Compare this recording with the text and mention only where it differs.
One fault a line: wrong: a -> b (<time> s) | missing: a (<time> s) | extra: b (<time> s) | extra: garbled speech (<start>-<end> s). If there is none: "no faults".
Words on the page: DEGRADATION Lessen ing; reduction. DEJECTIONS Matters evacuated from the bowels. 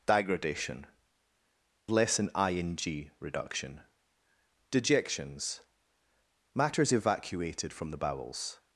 no faults